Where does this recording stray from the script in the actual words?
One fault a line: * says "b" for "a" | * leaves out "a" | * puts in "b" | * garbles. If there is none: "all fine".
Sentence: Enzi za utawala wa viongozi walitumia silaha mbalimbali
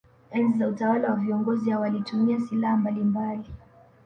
* puts in "hao"